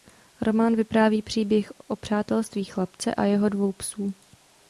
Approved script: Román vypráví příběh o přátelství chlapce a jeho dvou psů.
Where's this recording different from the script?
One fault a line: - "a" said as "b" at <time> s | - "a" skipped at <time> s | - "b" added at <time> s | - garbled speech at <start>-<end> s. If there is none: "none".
none